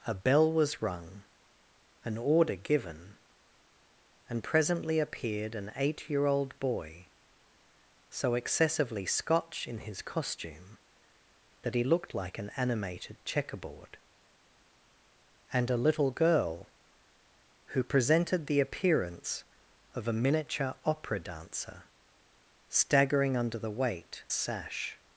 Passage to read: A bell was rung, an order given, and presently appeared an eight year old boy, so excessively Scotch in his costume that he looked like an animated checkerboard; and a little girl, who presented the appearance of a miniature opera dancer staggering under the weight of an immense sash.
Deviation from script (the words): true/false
true